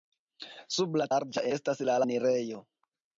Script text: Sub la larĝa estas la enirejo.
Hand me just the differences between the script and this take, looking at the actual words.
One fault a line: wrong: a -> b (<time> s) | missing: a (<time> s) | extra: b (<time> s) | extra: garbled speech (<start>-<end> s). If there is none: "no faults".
no faults